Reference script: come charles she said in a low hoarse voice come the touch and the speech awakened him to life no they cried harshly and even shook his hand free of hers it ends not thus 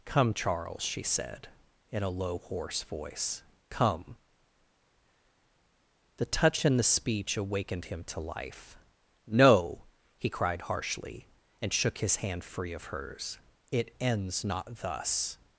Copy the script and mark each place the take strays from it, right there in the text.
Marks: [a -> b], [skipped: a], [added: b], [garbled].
come charles she said in a low hoarse voice come the touch and the speech awakened him to life no [they -> he] cried harshly and [skipped: even] shook his hand free of hers it ends not thus